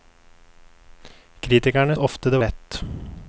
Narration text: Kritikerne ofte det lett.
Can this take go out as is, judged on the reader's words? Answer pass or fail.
pass